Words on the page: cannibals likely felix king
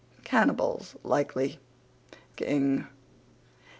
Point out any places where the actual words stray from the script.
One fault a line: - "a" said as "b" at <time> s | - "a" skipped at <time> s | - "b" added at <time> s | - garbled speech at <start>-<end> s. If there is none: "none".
- "felix" skipped at 1.6 s